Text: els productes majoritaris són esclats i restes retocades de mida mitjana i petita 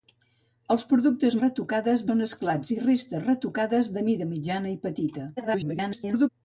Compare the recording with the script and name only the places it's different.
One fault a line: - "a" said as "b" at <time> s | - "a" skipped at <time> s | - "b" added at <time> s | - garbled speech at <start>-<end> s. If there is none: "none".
- "majoritaris" said as "retocades" at 1.4 s
- garbled speech at 5.4-6.3 s